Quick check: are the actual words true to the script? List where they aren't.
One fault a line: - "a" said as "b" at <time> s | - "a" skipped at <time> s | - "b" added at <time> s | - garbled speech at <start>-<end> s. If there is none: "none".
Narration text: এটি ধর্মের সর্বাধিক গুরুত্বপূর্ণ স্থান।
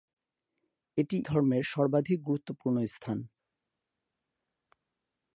none